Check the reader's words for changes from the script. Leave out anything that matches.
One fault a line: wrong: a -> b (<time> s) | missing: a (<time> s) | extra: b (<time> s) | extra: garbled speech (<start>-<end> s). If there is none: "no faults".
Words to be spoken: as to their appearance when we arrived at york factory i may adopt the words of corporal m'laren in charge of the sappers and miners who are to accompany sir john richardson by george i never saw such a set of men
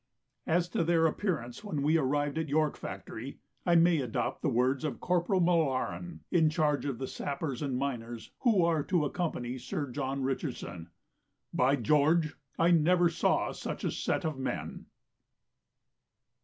no faults